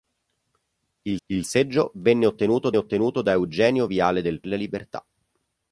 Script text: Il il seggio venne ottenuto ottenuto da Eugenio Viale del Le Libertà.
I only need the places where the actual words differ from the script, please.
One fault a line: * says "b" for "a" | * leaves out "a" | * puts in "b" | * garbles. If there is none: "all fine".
all fine